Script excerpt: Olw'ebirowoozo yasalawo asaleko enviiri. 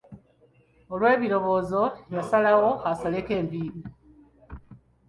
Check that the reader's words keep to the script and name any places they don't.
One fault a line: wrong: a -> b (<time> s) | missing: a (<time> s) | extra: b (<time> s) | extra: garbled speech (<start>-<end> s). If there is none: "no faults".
no faults